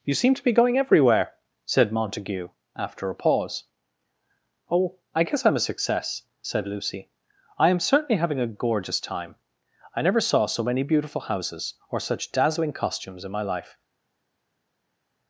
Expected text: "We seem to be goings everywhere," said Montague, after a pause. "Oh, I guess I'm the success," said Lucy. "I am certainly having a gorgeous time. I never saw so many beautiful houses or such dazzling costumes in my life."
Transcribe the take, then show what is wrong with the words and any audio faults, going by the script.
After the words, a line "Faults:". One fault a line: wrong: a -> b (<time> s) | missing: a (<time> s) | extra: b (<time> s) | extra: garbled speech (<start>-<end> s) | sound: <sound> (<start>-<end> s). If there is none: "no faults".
"You seem to be going everywhere," said Montague, after a pause. "Oh, I guess I'm a success," said Lucy. "I am certainly having a gorgeous time. I never saw so many beautiful houses or such dazzling costumes in my life."
Faults:
wrong: We -> You (0.0 s)
wrong: goings -> going (0.5 s)
wrong: the -> a (5.5 s)